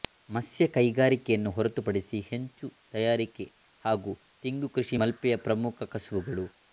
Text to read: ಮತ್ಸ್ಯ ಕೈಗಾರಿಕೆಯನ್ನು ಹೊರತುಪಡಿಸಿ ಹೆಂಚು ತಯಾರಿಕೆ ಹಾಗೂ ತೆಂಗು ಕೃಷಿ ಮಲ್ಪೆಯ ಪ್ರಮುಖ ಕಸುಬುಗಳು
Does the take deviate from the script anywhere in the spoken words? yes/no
no